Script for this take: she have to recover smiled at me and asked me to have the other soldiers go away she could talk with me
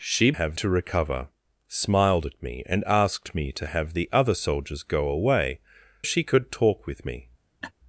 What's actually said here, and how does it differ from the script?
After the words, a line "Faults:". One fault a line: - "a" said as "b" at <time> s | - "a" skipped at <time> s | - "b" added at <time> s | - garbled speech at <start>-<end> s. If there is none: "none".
she have to recover smiled at me and asked me to have the other soldiers go away she could talk with me
Faults:
none